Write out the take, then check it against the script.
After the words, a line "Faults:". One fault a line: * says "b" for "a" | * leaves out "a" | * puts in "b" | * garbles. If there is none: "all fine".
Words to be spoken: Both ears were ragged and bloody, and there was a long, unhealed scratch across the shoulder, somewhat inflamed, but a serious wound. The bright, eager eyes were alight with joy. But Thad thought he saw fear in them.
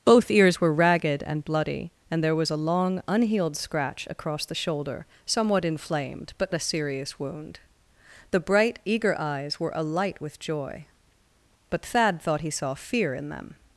Both ears were ragged and bloody, and there was a long, unhealed scratch across the shoulder, somewhat inflamed, but a serious wound. The bright, eager eyes were alight with joy. But Thad thought he saw fear in them.
Faults:
all fine